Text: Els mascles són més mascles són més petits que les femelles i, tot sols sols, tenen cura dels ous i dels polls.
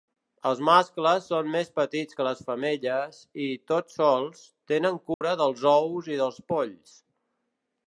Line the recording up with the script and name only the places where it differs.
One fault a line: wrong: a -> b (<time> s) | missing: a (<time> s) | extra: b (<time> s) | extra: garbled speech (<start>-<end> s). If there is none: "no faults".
missing: mascles són més (1.7 s)
missing: sols (4.5 s)